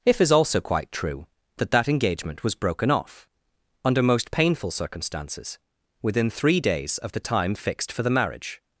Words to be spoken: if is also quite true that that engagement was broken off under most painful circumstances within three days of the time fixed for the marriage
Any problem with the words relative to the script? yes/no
no